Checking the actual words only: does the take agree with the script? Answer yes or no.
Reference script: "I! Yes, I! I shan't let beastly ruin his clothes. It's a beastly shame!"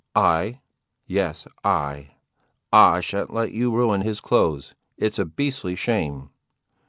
no